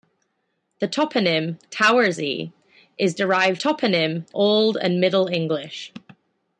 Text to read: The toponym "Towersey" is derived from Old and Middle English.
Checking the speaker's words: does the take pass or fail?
fail